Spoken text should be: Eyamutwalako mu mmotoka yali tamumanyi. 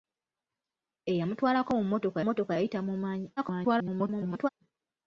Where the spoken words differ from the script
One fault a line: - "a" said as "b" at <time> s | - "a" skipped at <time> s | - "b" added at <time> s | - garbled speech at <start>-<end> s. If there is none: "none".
- "mmotoka" added at 2.2 s
- garbled speech at 3.4-4.5 s